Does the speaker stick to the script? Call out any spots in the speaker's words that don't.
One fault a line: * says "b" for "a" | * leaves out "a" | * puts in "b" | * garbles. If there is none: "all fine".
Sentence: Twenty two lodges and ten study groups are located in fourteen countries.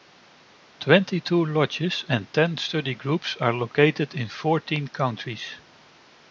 all fine